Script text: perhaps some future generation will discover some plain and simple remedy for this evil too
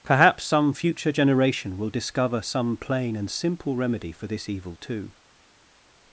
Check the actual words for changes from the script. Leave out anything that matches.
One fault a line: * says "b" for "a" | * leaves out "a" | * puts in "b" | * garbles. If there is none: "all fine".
all fine